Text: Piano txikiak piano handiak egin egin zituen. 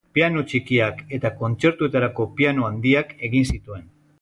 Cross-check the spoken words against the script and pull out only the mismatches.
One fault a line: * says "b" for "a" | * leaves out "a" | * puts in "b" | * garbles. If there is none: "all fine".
* puts in "eta kontzertuetarako"
* leaves out "egin"